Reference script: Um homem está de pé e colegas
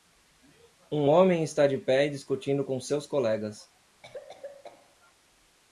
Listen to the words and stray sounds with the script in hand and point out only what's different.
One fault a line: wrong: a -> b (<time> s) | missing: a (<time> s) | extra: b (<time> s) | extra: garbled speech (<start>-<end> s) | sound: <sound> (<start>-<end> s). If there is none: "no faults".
extra: discutindo com seus (2.1 s)
sound: cough (4.0-5.0 s)